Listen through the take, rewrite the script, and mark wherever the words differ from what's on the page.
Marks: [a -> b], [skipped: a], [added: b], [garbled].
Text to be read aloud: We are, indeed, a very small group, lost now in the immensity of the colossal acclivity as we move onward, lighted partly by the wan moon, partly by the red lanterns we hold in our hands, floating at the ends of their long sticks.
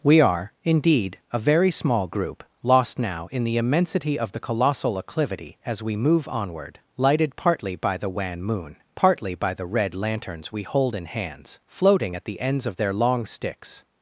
We are, indeed, a very small group, lost now in the immensity of the colossal acclivity as we move onward, lighted partly by the wan moon, partly by the red lanterns we hold in [skipped: our] hands, floating at the ends of their long sticks.